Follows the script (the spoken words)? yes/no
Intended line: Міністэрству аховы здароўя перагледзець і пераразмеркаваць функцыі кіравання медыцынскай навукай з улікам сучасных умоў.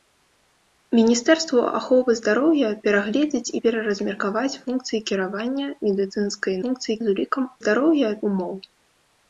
no